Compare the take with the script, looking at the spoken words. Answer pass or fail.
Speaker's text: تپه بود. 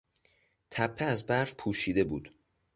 fail